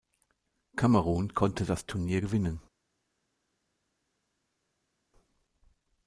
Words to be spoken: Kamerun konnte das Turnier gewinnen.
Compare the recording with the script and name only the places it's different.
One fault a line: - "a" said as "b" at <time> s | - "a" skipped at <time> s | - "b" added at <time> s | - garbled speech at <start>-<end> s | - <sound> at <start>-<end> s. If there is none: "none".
none